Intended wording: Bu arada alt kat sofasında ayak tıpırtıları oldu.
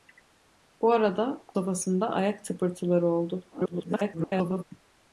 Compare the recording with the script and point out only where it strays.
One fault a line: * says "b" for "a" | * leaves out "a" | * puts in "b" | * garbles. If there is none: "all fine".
* leaves out "alt kat"
* garbles